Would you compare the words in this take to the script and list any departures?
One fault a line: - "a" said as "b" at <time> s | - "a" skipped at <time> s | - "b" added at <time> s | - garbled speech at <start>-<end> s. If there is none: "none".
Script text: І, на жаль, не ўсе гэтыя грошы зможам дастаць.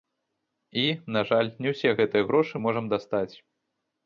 none